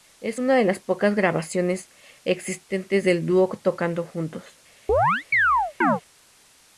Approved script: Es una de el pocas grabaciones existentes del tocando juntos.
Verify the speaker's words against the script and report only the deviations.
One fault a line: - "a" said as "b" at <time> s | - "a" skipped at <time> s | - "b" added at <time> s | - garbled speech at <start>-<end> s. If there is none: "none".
- "el" said as "las" at 0.6 s
- "dúo" added at 3.3 s